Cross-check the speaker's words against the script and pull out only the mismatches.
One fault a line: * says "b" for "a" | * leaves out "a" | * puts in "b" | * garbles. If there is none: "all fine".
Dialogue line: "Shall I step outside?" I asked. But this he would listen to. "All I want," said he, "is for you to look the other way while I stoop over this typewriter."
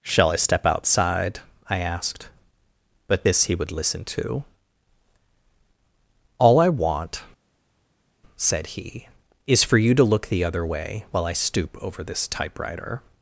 all fine